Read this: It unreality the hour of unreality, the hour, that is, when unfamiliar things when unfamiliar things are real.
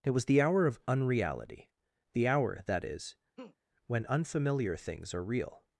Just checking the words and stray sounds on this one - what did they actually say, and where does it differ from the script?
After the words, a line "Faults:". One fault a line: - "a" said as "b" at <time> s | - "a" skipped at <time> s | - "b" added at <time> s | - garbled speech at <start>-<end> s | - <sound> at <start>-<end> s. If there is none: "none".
It was the hour of unreality, the hour, that is, when unfamiliar things are real.
Faults:
- "unreality" said as "was" at 0.1 s
- laugh at 3.4-3.6 s
- "when unfamiliar things" skipped at 5.1 s